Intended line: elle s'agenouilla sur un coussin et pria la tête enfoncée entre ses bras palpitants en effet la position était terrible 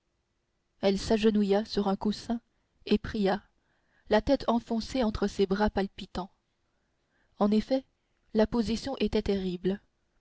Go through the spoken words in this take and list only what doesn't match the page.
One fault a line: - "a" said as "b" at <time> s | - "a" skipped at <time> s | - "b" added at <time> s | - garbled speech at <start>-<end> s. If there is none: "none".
none